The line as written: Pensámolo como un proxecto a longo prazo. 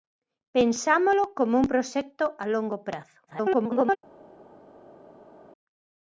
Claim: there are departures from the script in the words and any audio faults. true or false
true